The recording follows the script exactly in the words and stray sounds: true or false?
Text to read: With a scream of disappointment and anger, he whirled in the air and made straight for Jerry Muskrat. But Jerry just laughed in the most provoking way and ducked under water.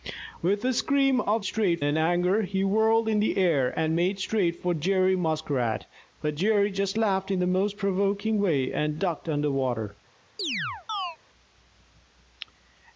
false